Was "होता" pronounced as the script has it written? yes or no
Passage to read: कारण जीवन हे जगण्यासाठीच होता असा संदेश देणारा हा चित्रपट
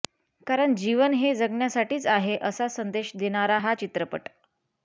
no